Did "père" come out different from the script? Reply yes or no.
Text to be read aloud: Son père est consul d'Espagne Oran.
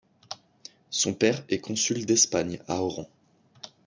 no